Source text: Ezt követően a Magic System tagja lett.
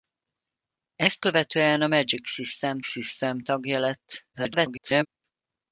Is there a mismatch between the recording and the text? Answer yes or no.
yes